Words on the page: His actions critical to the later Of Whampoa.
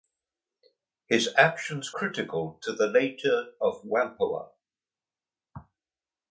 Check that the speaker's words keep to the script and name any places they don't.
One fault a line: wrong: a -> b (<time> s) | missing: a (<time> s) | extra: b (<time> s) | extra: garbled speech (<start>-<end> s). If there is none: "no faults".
no faults